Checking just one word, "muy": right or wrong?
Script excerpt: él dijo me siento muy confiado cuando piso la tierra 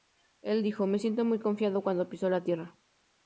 right